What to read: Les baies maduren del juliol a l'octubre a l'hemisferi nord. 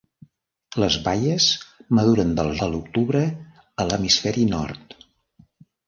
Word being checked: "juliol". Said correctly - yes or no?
no